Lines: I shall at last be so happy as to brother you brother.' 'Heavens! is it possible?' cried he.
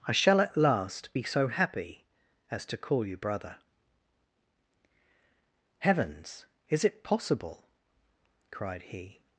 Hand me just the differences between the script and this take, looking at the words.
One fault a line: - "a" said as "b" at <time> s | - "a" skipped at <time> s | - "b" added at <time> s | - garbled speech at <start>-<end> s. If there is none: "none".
- "brother" said as "call" at 2.8 s